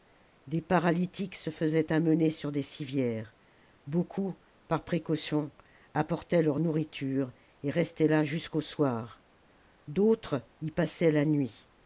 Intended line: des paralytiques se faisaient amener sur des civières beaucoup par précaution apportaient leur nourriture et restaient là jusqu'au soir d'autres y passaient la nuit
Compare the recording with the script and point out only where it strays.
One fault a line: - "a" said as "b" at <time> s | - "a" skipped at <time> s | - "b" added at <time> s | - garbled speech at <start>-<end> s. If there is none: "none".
none